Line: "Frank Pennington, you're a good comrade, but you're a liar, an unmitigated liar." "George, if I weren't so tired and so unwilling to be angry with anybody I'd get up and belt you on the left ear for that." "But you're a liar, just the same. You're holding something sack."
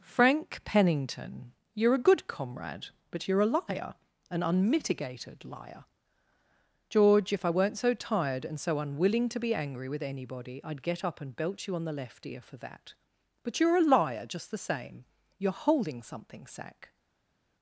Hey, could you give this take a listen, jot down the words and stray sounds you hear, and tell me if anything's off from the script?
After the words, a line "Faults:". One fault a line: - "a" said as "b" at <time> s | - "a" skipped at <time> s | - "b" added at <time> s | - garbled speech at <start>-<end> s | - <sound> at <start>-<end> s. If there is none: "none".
"Frank Pennington, you're a good comrade, but you're a liar, an unmitigated liar." "George, if I weren't so tired and so unwilling to be angry with anybody I'd get up and belt you on the left ear for that." "But you're a liar, just the same. You're holding something sack."
Faults:
none